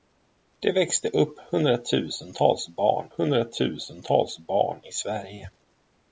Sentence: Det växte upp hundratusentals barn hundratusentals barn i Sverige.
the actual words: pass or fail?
pass